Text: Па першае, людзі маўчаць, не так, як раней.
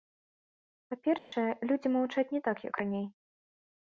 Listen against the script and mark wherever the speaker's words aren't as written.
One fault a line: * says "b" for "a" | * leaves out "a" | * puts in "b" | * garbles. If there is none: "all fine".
all fine